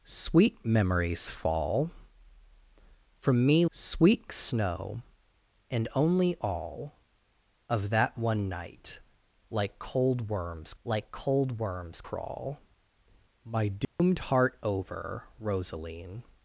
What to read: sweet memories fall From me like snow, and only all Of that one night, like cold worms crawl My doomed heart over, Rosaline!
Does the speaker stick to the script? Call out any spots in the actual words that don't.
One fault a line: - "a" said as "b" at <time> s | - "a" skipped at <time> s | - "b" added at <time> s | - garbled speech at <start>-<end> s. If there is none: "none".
- "like" said as "sweet" at 3.7 s
- "like cold worms" added at 10.8 s